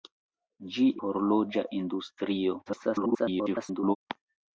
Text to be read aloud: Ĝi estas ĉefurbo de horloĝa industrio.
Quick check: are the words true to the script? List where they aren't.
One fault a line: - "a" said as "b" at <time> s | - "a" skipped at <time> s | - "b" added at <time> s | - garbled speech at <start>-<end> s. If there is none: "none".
- "estas ĉefurbo de" skipped at 0.8 s
- garbled speech at 2.7-4.0 s